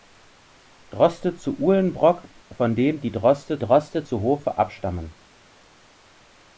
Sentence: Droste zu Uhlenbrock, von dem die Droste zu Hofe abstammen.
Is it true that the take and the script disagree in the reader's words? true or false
true